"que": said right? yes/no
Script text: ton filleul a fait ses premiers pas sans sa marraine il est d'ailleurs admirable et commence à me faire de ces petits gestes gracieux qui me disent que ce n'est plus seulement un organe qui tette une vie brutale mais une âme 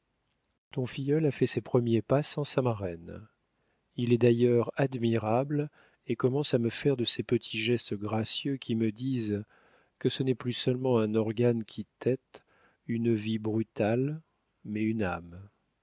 yes